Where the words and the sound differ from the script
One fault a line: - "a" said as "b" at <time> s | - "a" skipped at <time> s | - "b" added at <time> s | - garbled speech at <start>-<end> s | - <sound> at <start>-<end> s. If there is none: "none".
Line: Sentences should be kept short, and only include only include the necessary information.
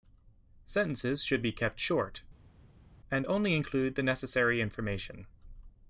- "only include" skipped at 3.9 s